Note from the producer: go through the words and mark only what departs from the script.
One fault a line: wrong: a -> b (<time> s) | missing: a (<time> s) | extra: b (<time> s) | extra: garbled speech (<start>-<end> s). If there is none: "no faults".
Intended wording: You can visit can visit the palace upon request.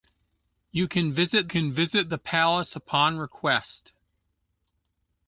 no faults